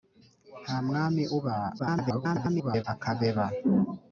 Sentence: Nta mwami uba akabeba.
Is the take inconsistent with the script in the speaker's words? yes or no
yes